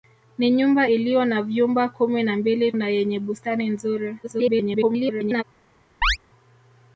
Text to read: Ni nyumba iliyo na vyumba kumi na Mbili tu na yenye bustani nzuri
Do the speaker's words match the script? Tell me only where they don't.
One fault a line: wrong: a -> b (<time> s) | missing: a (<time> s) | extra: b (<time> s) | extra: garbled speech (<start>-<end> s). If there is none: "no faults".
missing: tu (2.7 s)
extra: garbled speech (4.2-5.4 s)